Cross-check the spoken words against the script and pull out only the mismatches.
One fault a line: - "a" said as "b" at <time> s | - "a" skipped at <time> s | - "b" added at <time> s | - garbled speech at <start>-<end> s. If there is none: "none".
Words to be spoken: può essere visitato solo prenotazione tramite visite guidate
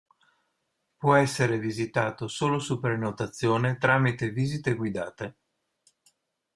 - "su" added at 2.6 s